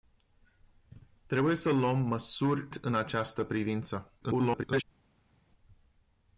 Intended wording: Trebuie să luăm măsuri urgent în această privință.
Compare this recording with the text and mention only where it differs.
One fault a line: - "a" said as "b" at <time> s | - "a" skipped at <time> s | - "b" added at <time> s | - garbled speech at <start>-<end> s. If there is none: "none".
- "urgent" skipped at 2.7 s
- garbled speech at 4.2-4.8 s